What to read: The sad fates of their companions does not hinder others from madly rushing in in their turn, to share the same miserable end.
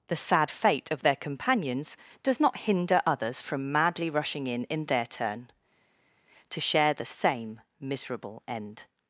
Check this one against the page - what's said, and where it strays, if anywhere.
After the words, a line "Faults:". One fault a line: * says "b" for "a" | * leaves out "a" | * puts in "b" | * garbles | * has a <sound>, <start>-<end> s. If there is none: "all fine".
The sad fate of their companions does not hinder others from madly rushing in in their turn, to share the same miserable end.
Faults:
* says "fate" for "fates"